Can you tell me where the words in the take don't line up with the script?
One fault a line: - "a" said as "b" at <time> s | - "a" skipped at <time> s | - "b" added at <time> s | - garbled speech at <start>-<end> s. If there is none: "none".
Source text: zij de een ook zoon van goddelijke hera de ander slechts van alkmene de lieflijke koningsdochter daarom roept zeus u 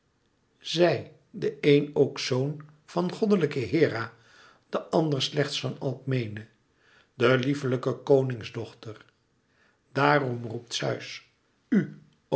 none